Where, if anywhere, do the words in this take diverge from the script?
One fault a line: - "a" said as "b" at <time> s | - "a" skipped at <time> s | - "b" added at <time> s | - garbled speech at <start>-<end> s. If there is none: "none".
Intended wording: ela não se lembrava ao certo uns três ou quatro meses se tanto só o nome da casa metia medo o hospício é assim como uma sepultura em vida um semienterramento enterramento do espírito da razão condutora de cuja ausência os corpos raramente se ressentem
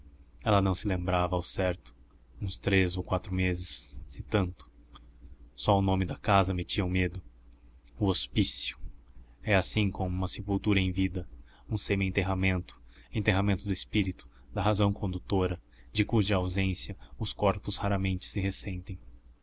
none